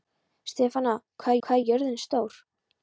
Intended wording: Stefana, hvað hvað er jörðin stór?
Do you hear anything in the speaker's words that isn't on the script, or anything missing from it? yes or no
no